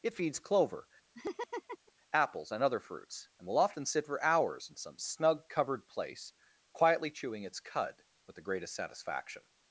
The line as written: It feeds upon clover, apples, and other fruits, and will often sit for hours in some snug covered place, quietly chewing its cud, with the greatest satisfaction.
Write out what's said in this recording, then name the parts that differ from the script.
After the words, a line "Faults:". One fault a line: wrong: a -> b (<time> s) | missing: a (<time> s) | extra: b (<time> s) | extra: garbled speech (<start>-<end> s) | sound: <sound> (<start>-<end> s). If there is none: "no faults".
It feeds clover, apples, and other fruits, and will often sit for hours in some snug covered place, quietly chewing its cud, with the greatest satisfaction.
Faults:
missing: upon (0.4 s)
sound: laugh (1.1-1.9 s)